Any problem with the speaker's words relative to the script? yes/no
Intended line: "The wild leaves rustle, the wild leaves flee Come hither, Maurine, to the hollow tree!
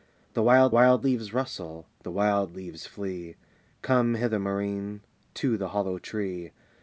yes